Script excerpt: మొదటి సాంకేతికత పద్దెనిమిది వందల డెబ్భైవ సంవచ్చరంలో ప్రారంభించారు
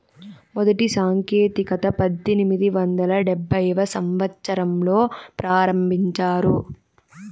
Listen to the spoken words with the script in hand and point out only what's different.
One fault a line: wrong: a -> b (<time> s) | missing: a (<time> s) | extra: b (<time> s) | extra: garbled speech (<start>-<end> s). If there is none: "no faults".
no faults